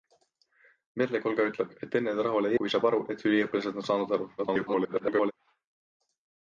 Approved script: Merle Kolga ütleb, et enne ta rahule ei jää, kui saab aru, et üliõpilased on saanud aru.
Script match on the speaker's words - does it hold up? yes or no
no